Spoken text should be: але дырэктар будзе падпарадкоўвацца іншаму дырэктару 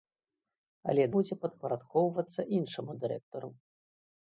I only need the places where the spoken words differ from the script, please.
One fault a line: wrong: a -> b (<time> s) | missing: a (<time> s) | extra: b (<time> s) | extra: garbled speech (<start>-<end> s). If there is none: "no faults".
missing: дырэктар (1.0 s)